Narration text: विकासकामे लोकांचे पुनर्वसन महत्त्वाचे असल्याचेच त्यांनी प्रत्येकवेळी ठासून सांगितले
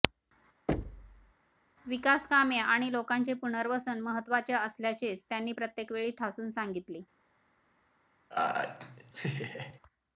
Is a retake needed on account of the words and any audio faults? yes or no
yes